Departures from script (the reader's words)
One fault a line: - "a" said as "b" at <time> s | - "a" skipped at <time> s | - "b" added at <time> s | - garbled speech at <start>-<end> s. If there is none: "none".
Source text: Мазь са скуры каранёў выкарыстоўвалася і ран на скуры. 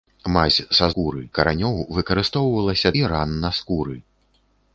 none